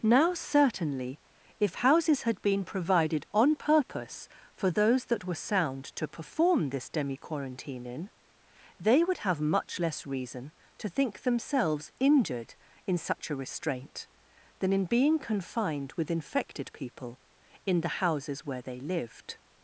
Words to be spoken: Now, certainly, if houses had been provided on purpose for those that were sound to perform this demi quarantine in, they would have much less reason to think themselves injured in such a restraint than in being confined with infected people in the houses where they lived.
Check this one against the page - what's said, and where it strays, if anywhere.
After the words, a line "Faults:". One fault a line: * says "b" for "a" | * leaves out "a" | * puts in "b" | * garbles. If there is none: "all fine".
Now, certainly, if houses had been provided on purpose for those that were sound to perform this demi quarantine in, they would have much less reason to think themselves injured in such a restraint than in being confined with infected people in the houses where they lived.
Faults:
all fine